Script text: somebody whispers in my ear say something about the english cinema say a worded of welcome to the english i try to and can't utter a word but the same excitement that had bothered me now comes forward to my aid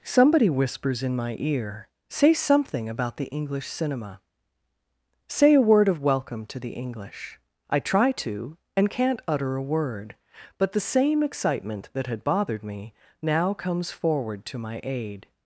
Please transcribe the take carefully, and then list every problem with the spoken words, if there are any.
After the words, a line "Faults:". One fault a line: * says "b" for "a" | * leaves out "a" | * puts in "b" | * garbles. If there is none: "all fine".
somebody whispers in my ear say something about the english cinema say a word of welcome to the english i try to and can't utter a word but the same excitement that had bothered me now comes forward to my aid
Faults:
* says "word" for "worded"